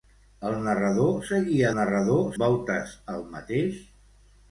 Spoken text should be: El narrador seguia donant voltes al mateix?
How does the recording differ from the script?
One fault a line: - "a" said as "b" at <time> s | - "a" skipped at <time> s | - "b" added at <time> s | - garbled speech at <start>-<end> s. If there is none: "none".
- "donant" said as "narrador" at 1.8 s